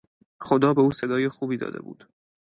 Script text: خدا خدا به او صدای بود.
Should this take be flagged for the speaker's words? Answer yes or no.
yes